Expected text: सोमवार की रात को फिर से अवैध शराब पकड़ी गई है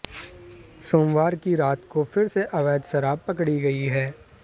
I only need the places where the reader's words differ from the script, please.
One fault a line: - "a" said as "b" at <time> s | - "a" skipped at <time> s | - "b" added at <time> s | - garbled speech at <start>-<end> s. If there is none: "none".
none